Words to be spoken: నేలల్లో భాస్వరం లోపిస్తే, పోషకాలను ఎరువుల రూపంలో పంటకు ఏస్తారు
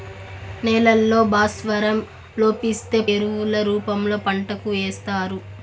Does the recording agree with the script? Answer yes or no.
no